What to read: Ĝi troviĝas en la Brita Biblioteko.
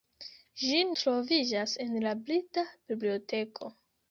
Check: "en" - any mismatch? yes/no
no